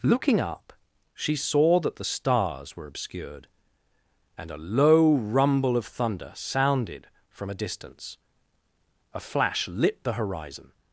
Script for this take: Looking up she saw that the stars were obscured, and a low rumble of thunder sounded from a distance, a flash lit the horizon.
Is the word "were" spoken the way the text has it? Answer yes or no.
yes